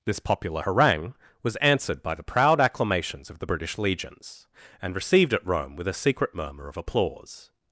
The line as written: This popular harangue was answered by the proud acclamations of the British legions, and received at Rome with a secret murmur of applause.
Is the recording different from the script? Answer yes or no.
no